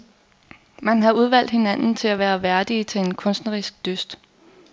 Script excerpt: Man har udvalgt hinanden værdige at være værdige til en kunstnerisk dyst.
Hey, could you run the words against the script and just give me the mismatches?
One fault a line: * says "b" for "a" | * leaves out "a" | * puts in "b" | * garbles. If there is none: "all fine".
* says "til" for "værdige"